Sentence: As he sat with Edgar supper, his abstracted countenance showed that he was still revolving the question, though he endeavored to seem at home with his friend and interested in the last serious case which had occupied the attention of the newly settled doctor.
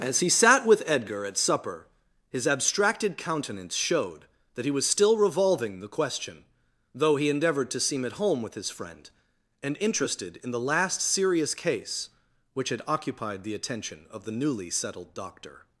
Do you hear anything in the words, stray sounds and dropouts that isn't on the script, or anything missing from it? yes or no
yes